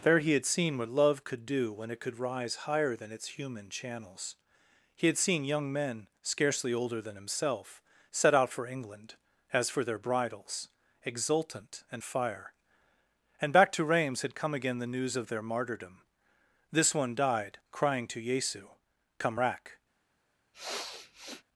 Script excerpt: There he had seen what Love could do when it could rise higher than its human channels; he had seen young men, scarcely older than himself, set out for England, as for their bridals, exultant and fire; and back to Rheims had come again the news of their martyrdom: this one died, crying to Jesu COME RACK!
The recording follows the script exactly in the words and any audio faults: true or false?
false